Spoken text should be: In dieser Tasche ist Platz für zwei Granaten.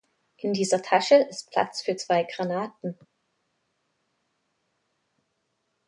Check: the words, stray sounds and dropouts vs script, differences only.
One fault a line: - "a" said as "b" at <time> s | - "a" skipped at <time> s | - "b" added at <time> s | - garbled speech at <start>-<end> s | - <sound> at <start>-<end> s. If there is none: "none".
none